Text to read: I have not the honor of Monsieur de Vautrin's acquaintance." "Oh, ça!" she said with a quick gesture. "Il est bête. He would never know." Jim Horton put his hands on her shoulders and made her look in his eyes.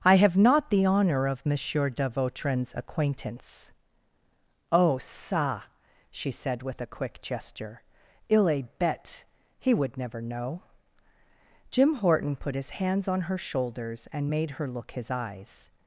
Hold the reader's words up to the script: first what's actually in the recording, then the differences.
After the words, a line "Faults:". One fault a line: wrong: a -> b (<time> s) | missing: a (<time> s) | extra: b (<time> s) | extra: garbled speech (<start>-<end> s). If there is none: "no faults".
I have not the honor of Monsieur de Vautrin's acquaintance." "Oh, ça!" she said with a quick gesture. "Il est bête. He would never know." Jim Horton put his hands on her shoulders and made her look his eyes.
Faults:
missing: in (14.9 s)